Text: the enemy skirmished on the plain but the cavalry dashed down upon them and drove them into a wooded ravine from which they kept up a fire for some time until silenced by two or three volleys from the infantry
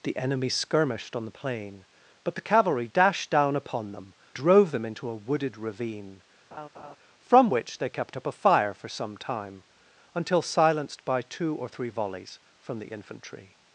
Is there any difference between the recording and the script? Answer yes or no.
yes